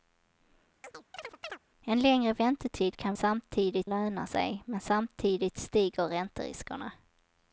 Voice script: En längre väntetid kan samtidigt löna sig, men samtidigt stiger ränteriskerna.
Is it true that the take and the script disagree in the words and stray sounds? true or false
true